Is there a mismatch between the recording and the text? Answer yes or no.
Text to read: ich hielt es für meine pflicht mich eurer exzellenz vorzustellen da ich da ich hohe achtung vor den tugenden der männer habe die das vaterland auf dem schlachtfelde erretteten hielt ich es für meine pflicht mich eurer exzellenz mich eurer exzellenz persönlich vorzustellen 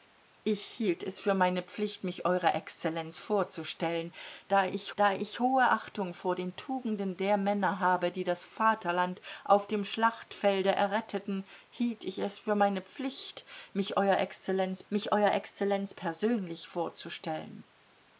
no